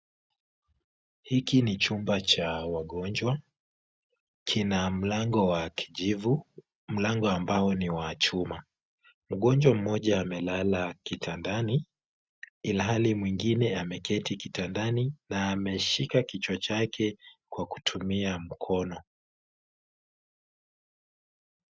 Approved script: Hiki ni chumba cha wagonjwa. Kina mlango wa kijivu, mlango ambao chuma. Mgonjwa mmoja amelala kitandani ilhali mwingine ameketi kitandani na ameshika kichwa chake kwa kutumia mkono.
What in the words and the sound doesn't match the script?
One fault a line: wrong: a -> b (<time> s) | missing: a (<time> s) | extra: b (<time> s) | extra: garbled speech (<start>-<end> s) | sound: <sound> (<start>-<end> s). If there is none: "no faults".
extra: ni wa (7.7 s)